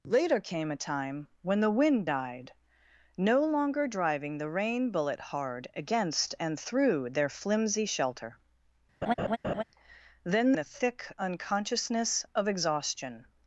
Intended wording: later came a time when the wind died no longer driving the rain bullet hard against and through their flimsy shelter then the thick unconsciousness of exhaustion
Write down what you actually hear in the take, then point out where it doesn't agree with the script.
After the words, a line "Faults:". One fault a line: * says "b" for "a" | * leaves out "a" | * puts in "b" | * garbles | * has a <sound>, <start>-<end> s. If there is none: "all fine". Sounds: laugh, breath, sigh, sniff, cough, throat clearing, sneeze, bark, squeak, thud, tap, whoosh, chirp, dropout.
later came a time when the wind died no longer driving the rain bullet hard against and through their flimsy shelter then the thick unconsciousness of exhaustion
Faults:
* has a laugh, 9.0-9.6 s